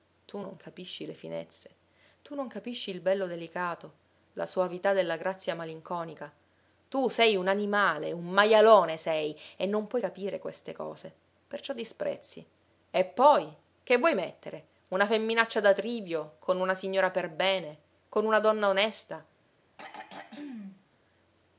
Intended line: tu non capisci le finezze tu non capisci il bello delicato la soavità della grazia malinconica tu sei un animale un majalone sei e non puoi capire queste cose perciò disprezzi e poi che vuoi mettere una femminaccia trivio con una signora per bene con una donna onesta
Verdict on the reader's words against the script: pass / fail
fail